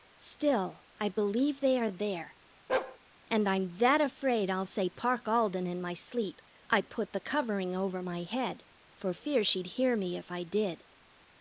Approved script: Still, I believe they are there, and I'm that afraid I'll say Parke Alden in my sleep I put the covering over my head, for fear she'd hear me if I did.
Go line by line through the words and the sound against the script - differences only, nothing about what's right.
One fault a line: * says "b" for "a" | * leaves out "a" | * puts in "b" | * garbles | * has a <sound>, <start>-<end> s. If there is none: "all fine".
* has a bark, 2.7-3.0 s